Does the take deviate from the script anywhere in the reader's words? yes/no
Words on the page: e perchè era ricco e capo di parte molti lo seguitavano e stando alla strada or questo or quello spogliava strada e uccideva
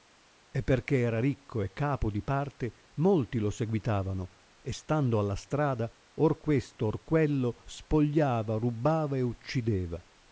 yes